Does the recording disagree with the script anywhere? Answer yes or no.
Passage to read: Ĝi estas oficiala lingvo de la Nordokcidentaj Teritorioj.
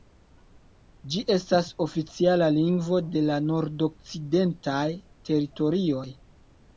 no